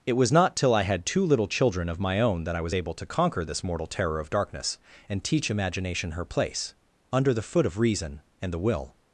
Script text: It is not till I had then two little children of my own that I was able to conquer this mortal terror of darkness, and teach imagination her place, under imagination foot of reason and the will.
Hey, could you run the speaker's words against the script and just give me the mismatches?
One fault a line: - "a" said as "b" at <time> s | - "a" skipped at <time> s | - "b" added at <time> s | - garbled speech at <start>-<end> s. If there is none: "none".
- "is" said as "was" at 0.1 s
- "then" skipped at 1.1 s
- "imagination" said as "the" at 7.3 s